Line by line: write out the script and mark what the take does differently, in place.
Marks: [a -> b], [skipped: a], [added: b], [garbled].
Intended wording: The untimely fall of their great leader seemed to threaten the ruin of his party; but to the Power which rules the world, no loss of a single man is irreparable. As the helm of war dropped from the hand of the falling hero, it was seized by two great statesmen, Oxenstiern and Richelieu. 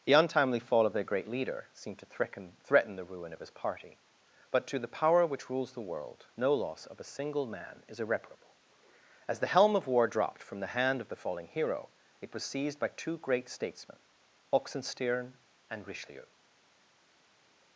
The untimely fall of their great leader seemed to threaten [added: threaten] the ruin of his party; but to the Power which rules the world, no loss of a single man is irreparable. As the helm of war dropped from the hand of the falling hero, it was seized by two great statesmen, Oxenstiern and Richelieu.